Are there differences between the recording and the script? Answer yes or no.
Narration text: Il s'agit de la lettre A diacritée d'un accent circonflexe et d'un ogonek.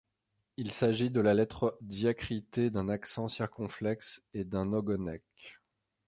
yes